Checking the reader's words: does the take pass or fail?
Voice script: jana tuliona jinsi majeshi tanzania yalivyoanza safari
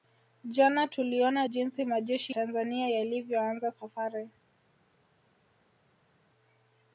pass